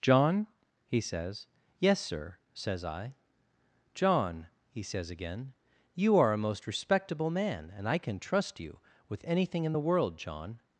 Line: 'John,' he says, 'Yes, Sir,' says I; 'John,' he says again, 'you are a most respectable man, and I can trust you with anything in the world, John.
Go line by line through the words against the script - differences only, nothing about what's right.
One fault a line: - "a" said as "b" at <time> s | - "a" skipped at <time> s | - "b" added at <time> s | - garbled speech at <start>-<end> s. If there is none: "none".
none